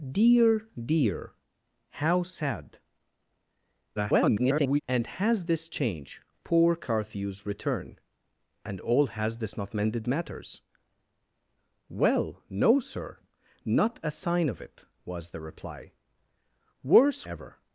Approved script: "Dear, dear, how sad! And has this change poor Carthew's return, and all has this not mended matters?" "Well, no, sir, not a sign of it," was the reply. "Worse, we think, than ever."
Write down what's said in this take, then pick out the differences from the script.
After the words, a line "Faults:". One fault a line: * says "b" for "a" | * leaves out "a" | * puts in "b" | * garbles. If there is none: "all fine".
"Dear, dear, how sad! [garbled] And has this change poor Carthew's return, and all has this not mended matters?" "Well, no, sir, not a sign of it," was the reply. "Worse, ever."
Faults:
* garbles
* leaves out "we think than"